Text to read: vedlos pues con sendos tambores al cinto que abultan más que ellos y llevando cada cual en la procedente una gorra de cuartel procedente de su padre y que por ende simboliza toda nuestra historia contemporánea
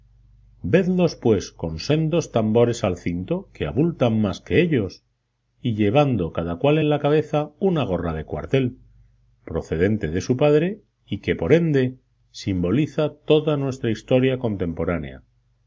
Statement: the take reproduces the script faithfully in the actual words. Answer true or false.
false